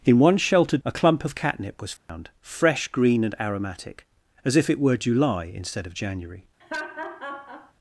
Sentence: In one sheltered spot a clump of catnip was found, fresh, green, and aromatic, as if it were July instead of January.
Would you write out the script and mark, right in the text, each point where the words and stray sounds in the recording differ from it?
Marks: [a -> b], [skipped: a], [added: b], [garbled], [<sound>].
In one sheltered [skipped: spot] a clump of catnip was found, [dropout] fresh, green, and aromatic, as if it were July instead of January. [laugh]